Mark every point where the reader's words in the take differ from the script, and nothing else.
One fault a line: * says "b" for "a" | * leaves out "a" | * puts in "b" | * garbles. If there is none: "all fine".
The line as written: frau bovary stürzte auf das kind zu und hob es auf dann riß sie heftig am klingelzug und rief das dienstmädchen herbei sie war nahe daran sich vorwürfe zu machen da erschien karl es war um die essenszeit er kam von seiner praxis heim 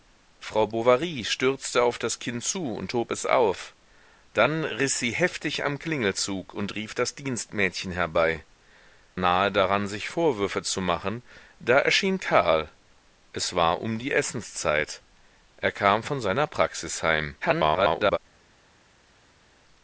* leaves out "sie war"
* garbles